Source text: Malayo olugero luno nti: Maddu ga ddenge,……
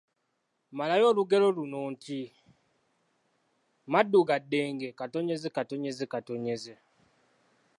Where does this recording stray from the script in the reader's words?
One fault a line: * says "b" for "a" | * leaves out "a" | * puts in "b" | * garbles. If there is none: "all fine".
all fine